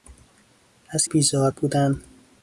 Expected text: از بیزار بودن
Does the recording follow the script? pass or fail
pass